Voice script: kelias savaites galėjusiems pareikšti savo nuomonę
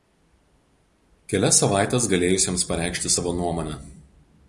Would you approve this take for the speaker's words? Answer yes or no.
yes